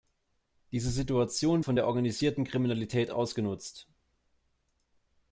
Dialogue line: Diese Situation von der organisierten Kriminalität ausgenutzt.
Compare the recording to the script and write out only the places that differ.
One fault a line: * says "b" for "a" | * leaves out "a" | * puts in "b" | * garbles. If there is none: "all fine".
all fine